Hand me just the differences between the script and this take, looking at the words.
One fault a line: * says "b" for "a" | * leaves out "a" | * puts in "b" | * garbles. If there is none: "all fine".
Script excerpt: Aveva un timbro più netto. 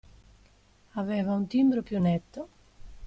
all fine